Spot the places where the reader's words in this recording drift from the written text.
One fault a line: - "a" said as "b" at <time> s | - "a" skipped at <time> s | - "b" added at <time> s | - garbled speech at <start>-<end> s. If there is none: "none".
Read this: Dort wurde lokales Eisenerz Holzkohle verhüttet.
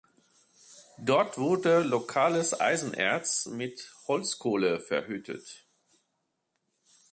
- "mit" added at 3.5 s